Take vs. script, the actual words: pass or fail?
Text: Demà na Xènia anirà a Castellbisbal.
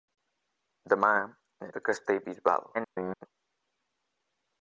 fail